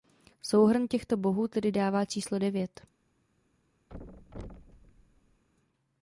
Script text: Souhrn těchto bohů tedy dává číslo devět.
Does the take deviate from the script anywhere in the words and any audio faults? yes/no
yes